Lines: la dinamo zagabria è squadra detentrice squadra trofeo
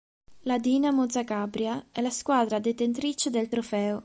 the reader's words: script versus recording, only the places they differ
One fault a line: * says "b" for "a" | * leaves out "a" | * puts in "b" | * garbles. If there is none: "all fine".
* puts in "la"
* says "del" for "squadra"